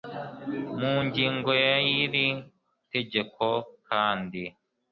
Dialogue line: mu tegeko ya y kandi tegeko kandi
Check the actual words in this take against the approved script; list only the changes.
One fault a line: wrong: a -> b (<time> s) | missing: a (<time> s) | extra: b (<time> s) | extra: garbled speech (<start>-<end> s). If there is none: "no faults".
wrong: tegeko -> ngingo (1.0 s)
wrong: kandi -> iri (2.0 s)